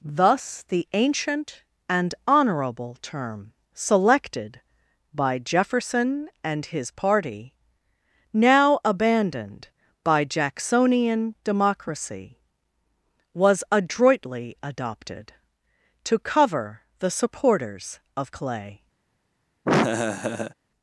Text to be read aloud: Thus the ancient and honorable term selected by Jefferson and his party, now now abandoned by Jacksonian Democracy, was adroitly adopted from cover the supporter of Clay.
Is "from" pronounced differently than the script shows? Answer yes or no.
yes